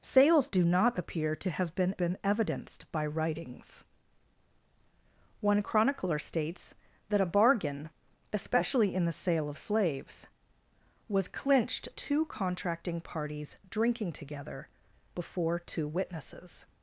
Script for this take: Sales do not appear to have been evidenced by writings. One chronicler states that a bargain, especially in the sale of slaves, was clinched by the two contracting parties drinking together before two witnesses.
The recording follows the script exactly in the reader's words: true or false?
false